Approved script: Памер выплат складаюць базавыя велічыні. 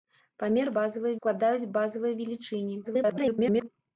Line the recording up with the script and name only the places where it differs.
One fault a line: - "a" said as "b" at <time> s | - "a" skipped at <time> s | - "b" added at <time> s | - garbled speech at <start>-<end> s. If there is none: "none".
- "выплат" said as "базавыя" at 0.8 s
- garbled speech at 2.8-3.7 s